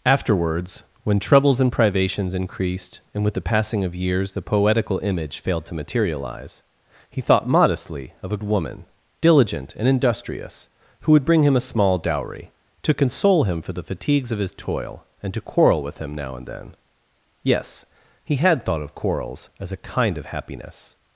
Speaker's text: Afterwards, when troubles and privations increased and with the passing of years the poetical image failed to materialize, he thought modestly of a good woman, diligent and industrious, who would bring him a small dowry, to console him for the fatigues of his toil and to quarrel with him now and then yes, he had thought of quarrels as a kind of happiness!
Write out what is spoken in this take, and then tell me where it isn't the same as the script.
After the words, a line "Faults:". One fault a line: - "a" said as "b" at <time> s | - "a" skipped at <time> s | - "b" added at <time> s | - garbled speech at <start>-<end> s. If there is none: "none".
Afterwards, when troubles and privations increased and with the passing of years the poetical image failed to materialize, he thought modestly of a woman, diligent and industrious, who would bring him a small dowry, to console him for the fatigues of his toil and to quarrel with him now and then yes, he had thought of quarrels as a kind of happiness!
Faults:
- "good" skipped at 8.4 s